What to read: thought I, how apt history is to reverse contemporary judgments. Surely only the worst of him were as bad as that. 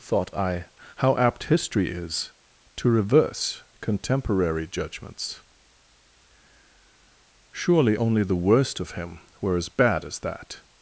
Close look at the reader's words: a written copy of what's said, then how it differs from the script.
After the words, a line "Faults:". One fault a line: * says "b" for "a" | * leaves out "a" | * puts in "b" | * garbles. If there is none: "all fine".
thought I, how apt history is to reverse contemporary judgments. Surely only the worst of him were as bad as that.
Faults:
all fine